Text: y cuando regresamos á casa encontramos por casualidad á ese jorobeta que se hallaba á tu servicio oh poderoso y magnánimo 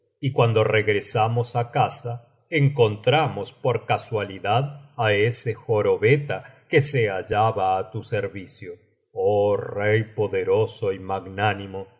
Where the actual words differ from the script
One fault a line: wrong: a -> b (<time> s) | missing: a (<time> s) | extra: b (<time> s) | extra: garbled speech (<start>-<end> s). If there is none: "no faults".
extra: rey (9.6 s)